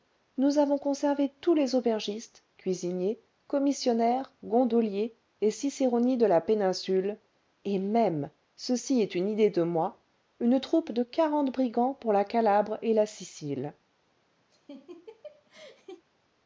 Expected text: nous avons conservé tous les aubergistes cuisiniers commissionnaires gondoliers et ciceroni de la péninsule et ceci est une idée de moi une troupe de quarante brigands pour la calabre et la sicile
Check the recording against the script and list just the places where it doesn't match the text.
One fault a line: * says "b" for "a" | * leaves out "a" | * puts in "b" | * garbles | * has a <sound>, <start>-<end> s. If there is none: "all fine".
* puts in "même"
* has a laugh, 14.5-16.0 s